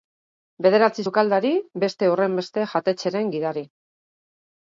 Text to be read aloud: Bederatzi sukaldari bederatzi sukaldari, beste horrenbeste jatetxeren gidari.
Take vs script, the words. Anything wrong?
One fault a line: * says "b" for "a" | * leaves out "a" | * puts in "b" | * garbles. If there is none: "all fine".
* leaves out "bederatzi sukaldari"